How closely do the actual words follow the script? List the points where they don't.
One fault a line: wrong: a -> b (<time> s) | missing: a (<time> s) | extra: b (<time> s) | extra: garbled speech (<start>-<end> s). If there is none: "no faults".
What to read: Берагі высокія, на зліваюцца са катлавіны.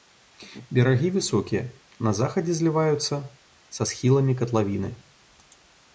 extra: захадзе (2.2 s)
extra: схіламі (3.9 s)